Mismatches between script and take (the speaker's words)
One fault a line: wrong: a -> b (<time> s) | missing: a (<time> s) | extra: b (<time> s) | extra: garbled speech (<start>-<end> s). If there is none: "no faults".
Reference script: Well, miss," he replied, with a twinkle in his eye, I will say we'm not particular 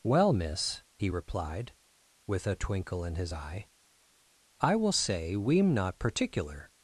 no faults